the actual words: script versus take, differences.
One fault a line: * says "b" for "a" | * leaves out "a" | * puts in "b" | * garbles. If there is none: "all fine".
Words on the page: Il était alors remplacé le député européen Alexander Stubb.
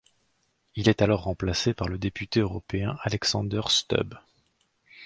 * says "est" for "était"
* puts in "par"